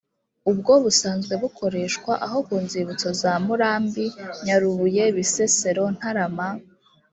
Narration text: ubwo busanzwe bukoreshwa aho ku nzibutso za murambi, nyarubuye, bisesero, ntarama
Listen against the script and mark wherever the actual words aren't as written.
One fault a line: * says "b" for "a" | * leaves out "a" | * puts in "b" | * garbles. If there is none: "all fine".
all fine